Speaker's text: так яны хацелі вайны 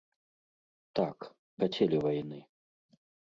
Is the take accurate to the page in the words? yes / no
no